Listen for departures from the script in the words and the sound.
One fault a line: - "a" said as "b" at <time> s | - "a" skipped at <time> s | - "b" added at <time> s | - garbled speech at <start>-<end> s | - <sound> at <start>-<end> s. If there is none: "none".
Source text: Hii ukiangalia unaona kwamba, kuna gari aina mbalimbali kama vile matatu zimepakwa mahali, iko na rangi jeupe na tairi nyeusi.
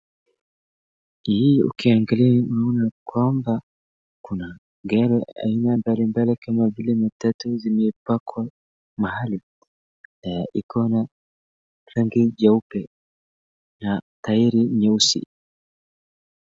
none